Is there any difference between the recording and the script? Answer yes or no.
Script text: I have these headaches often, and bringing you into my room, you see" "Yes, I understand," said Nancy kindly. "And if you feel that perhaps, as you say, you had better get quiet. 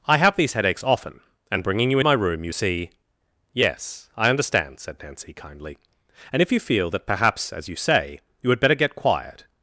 yes